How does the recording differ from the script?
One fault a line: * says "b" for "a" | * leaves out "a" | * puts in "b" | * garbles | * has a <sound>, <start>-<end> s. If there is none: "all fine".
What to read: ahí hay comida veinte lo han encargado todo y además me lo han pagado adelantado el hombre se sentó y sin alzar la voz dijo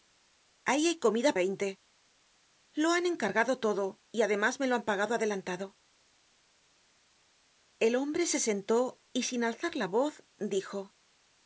all fine